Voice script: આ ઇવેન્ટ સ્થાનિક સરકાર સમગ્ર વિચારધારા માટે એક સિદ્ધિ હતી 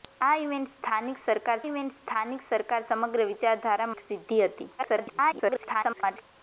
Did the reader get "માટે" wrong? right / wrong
wrong